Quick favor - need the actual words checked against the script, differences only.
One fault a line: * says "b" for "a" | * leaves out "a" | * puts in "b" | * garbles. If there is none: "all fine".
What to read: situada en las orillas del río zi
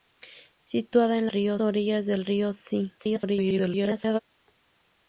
* says "río" for "las"
* garbles